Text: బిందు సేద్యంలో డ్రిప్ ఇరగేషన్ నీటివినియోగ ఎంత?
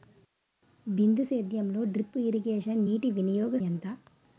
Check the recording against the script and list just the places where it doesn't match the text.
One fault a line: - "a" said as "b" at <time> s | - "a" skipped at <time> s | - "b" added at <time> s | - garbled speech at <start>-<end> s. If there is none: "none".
none